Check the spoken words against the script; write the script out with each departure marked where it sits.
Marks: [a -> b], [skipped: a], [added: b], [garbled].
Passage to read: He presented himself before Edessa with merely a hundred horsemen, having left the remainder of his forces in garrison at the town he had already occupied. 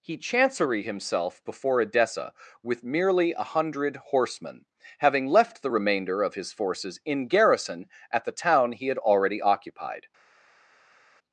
He [presented -> chancery] himself before Edessa with merely a hundred horsemen, having left the remainder of his forces in garrison at the town he had already occupied.